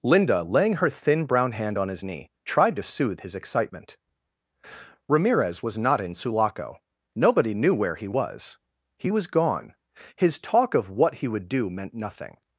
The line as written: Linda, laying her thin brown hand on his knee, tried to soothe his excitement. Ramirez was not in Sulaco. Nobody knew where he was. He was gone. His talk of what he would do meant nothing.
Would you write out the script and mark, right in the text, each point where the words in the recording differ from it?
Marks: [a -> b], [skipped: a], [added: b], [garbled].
Linda, laying her thin brown hand on his knee, tried to soothe his excitement. Ramirez was not in Sulaco. Nobody knew where he was. He was gone. His talk of what he would do meant nothing.